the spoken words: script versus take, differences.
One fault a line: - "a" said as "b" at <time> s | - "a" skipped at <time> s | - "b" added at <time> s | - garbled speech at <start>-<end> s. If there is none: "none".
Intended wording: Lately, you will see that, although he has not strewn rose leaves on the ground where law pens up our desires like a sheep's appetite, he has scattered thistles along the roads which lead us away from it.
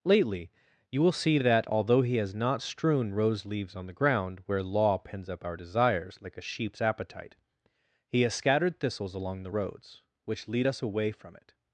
none